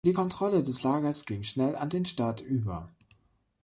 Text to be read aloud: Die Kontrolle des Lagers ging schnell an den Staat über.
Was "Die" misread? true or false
false